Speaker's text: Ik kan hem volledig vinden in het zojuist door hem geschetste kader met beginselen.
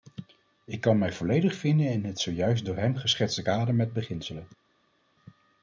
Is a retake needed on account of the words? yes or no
yes